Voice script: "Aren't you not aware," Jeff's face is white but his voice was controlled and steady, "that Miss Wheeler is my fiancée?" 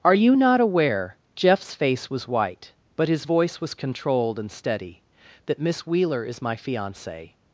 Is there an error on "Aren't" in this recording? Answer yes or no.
yes